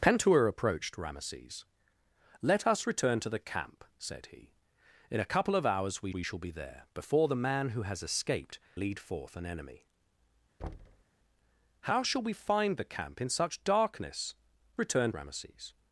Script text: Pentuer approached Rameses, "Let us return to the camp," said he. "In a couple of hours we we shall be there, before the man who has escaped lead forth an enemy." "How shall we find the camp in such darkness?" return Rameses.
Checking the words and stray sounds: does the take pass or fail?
fail